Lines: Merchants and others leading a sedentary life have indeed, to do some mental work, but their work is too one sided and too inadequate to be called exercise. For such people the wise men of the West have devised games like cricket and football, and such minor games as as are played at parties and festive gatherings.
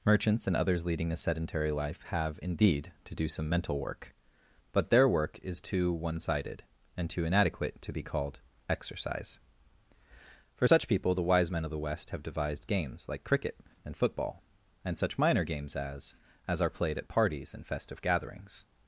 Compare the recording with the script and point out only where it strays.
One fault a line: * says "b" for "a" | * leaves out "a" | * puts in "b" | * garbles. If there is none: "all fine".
all fine